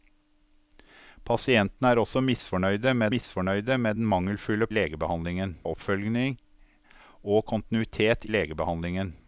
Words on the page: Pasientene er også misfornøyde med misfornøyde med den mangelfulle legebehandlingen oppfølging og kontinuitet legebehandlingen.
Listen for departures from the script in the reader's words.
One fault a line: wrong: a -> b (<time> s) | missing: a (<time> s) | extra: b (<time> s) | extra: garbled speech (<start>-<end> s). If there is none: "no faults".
no faults